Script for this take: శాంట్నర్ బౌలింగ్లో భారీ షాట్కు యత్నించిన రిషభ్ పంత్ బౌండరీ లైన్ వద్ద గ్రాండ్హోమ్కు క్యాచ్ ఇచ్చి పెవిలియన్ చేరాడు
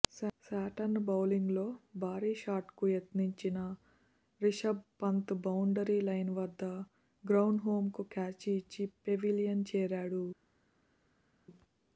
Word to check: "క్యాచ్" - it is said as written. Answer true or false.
true